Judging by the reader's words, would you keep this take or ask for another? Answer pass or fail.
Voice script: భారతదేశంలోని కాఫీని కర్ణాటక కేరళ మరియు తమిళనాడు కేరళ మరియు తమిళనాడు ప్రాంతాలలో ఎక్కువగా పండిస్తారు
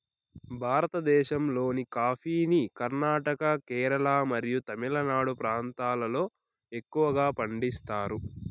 fail